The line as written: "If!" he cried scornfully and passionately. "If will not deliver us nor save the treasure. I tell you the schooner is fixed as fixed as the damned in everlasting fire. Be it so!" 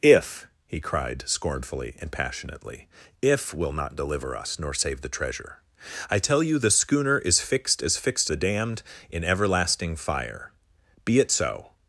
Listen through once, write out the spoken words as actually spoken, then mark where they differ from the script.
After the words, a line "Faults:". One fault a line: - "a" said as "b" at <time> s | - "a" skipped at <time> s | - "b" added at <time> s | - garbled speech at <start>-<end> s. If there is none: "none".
"If!" he cried scornfully and passionately. "If will not deliver us nor save the treasure. I tell you the schooner is fixed as fixed the damned in everlasting fire. Be it so!"
Faults:
- "as" skipped at 8.3 s